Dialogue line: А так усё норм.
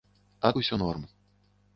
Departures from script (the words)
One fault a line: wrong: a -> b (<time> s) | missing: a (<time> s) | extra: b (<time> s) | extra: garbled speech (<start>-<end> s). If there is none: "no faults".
missing: так (0.5 s)